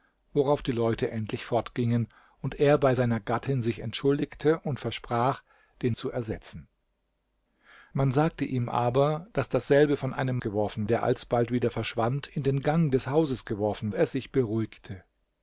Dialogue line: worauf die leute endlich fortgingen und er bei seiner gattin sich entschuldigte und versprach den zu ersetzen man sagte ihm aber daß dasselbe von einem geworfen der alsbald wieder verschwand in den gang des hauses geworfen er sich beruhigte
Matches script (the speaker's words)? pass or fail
pass